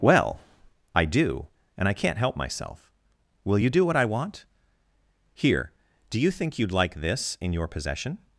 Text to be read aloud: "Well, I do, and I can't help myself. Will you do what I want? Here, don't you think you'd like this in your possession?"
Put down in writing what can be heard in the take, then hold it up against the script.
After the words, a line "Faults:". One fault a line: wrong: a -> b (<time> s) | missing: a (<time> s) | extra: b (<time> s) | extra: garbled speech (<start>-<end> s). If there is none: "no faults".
"Well, I do, and I can't help myself. Will you do what I want? Here, do you think you'd like this in your possession?"
Faults:
wrong: don't -> do (6.1 s)